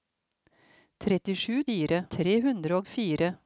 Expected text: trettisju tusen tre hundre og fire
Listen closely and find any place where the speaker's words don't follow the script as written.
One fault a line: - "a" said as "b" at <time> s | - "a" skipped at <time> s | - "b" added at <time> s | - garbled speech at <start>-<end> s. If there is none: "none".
- "tusen" said as "fire" at 1.7 s